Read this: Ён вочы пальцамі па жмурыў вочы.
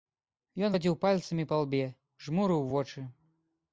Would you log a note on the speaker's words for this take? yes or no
yes